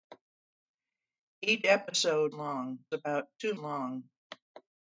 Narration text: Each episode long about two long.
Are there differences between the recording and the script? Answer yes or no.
no